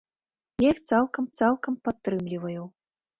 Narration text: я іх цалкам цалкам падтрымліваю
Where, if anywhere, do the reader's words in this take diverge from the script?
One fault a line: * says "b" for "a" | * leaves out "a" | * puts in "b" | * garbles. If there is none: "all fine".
all fine